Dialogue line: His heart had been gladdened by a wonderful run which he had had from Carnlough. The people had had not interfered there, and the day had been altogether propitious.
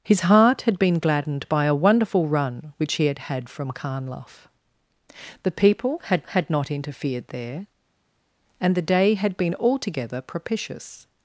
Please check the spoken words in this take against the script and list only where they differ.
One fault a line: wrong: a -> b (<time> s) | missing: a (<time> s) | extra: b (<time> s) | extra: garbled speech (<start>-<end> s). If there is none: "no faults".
no faults